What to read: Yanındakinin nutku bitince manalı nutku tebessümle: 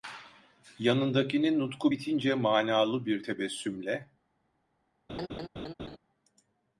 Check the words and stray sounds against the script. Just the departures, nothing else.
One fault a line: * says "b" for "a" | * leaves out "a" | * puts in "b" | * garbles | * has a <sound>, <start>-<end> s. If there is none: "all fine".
* says "bir" for "nutku"
* has a laugh, 5.1-6.0 s